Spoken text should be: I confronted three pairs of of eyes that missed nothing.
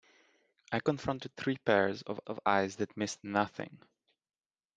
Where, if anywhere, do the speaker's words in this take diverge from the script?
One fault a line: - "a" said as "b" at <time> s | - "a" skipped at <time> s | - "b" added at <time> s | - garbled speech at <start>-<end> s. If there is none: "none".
none